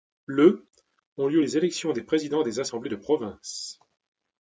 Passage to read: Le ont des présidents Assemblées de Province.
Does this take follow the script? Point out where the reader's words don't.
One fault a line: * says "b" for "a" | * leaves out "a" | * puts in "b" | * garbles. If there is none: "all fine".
* puts in "lieu les élections"
* puts in "des"